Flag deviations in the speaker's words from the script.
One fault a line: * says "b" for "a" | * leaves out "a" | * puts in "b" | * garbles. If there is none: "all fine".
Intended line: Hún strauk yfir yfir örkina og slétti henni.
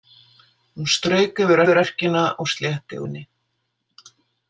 all fine